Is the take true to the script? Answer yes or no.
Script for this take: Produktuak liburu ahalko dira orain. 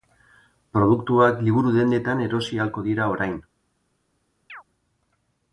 no